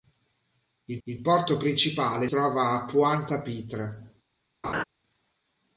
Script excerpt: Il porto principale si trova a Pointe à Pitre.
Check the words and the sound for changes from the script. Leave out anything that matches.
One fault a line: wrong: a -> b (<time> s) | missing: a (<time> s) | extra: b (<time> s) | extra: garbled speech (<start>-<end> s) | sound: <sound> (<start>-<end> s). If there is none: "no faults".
extra: il (1.0 s)
missing: si (2.3 s)
sound: laugh (4.6-4.8 s)